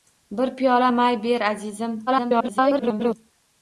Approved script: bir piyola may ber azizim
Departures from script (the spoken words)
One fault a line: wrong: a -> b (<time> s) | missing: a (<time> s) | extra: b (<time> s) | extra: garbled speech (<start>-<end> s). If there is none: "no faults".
extra: garbled speech (2.1-3.2 s)